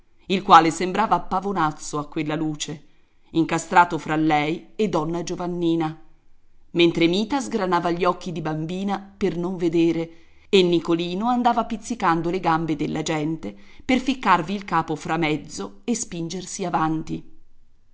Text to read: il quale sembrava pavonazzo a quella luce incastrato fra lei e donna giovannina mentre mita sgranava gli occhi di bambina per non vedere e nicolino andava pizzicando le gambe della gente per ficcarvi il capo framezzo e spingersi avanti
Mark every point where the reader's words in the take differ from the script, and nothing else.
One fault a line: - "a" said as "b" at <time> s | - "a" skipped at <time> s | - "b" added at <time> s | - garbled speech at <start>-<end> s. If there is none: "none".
none